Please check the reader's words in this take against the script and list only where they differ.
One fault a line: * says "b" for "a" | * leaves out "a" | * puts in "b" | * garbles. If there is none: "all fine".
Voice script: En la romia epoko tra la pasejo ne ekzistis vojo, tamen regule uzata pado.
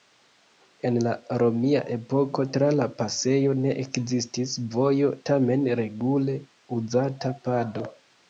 all fine